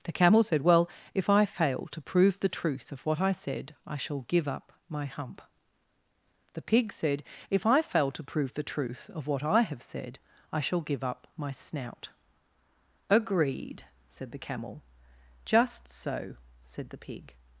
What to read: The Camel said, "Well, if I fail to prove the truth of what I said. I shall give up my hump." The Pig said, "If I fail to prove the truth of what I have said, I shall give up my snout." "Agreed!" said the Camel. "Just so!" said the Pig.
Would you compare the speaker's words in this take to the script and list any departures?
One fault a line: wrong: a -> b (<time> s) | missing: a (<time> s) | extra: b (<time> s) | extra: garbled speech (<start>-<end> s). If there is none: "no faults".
no faults